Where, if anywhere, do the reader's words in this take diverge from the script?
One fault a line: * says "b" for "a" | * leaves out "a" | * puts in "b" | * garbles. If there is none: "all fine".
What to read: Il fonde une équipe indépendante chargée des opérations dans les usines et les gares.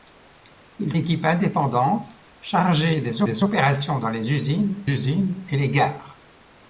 * leaves out "fonde une"
* puts in "des"
* puts in "usines"